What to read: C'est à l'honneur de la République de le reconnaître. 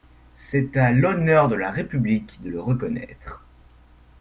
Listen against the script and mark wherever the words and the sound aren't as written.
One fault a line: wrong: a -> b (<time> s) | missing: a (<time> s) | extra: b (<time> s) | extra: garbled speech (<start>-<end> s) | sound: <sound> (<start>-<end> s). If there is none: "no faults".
no faults